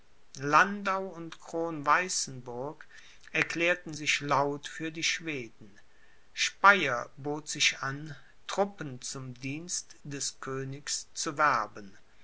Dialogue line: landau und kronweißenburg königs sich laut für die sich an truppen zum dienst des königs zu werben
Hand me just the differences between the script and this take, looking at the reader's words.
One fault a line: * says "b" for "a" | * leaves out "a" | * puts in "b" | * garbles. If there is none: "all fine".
* says "erklärten" for "königs"
* puts in "schweden speyer bot"